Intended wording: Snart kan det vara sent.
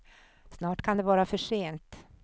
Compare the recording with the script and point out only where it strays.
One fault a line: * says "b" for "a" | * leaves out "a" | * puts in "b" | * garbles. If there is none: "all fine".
* puts in "för"